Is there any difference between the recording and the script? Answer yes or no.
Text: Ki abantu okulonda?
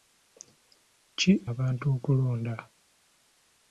no